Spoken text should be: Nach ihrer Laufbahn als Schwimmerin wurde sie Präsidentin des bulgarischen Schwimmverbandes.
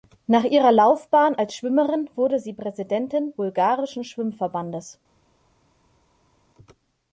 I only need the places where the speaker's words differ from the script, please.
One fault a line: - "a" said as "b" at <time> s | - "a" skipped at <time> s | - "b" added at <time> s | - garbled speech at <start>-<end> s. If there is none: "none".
- "des" skipped at 3.4 s